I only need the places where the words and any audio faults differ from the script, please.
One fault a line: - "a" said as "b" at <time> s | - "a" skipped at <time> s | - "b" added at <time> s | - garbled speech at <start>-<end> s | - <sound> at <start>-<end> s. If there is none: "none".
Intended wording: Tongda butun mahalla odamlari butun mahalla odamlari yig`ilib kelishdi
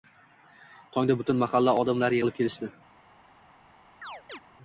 - "butun mahalla odamlari" skipped at 2.2 s
- chirp at 4.0-4.4 s